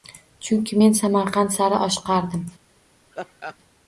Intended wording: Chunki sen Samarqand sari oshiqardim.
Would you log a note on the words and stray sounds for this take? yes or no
yes